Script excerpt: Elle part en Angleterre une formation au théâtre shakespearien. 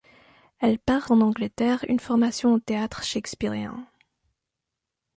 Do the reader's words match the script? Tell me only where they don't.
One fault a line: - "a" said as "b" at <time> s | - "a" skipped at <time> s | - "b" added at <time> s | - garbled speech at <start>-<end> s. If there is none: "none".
none